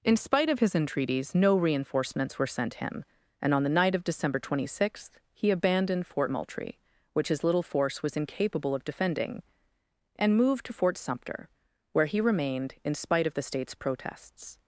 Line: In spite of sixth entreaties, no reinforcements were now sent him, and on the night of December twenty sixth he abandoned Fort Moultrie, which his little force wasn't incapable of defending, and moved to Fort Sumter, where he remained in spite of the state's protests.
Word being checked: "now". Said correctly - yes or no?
no